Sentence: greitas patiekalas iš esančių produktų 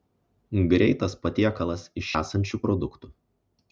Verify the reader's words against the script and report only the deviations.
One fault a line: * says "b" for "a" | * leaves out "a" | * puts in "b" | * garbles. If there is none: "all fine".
all fine